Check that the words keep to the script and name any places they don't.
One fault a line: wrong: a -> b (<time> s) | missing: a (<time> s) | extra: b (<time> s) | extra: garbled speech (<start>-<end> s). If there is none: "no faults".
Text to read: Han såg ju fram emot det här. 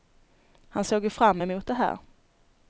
no faults